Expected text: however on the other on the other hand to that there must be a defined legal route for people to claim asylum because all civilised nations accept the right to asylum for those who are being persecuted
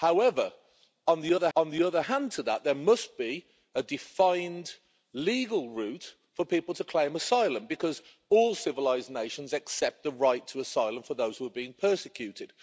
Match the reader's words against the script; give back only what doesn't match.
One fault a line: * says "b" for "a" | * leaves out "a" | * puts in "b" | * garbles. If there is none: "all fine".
all fine